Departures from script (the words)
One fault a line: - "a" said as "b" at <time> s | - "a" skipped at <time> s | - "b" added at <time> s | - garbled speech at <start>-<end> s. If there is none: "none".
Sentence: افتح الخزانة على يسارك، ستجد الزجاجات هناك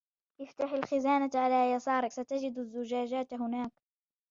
none